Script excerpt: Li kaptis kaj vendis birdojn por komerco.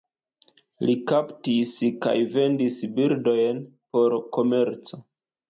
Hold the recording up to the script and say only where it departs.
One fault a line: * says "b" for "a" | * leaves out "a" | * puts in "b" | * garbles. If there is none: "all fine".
all fine